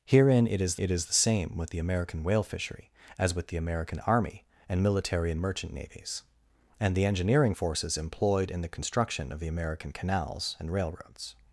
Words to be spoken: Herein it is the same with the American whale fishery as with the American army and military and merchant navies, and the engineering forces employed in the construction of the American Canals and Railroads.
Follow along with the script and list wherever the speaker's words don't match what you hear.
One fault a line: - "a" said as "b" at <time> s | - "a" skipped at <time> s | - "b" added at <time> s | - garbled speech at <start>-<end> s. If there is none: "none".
- "it is" added at 0.8 s